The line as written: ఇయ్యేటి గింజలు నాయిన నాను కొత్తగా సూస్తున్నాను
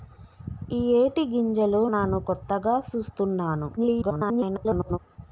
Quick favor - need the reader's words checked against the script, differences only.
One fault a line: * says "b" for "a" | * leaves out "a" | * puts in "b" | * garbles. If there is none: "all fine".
* leaves out "నాయిన"
* garbles